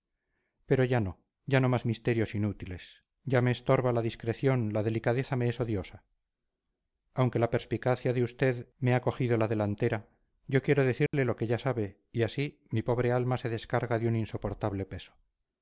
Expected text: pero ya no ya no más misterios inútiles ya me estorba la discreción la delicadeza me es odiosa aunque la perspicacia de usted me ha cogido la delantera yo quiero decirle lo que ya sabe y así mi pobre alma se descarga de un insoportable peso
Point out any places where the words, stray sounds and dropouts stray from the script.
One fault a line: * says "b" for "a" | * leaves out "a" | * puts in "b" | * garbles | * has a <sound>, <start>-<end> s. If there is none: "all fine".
* has a dropout, 11.1-11.1 s